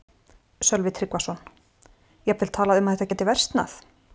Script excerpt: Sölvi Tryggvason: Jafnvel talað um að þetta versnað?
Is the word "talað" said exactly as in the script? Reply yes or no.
yes